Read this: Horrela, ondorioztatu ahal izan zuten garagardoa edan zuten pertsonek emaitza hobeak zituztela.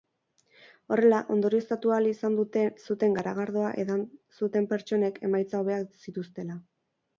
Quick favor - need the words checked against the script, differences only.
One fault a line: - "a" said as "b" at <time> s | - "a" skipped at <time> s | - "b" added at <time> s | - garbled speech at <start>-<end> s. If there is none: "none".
none